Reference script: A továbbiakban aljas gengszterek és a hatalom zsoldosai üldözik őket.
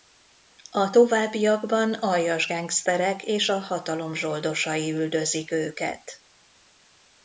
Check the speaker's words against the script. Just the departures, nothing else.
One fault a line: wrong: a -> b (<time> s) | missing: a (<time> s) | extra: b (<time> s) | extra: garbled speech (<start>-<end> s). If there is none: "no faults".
no faults